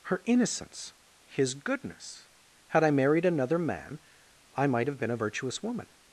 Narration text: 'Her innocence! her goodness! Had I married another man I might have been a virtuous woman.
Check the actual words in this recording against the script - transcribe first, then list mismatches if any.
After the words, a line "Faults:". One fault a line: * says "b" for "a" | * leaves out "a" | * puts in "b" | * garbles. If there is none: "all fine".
'Her innocence! his goodness! Had I married another man I might have been a virtuous woman.
Faults:
* says "his" for "her"